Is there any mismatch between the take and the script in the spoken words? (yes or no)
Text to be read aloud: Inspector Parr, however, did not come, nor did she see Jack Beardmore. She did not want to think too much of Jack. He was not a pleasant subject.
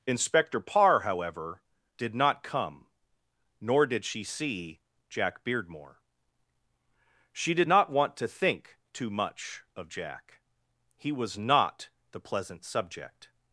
yes